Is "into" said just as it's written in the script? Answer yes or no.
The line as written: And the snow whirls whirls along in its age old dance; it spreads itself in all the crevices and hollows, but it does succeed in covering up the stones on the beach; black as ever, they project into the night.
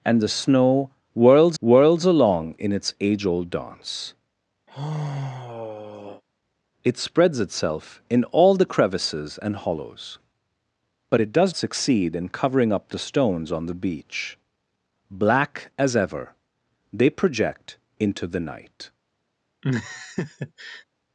yes